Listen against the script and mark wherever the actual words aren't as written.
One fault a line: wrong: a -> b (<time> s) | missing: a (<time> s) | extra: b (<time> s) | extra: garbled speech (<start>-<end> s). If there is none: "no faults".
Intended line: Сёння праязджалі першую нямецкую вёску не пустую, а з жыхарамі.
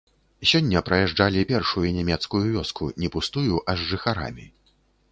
no faults